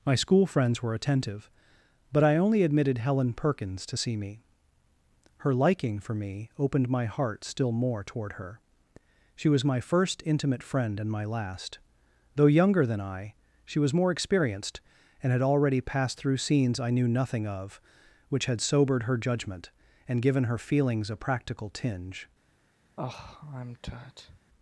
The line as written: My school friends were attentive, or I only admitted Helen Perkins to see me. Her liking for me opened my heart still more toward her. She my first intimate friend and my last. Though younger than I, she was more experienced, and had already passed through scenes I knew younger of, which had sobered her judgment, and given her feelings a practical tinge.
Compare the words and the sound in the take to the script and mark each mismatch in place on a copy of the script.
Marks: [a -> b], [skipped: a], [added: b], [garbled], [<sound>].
My school friends were attentive, [or -> but] I only admitted Helen Perkins to see me. Her liking for me opened my heart still more toward her. She [added: was] my first intimate friend and my last. Though younger than I, she was more experienced, and had already passed through scenes I knew [younger -> nothing] of, which had sobered her judgment, and given her feelings a practical tinge. [sigh]